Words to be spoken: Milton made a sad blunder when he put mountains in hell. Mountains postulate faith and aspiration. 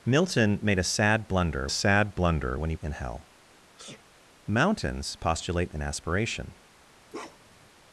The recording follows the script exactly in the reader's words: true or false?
false